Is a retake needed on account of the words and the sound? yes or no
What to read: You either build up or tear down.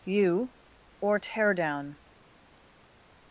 yes